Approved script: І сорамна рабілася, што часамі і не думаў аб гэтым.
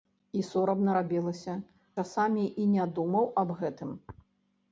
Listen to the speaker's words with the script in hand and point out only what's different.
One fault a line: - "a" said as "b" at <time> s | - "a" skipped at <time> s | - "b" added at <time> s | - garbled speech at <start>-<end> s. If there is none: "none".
- "што" skipped at 1.5 s